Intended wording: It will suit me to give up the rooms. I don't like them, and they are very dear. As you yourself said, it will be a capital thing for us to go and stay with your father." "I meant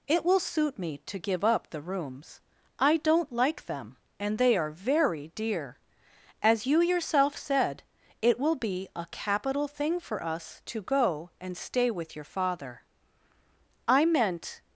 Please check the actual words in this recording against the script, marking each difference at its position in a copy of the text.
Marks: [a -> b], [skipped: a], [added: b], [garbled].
It will suit me to give up the rooms. I don't like them, and they are very dear. As you yourself said, it will be a capital thing for us to go and stay with your father." "I meant